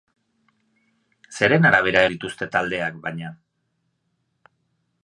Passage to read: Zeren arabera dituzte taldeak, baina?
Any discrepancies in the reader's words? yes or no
no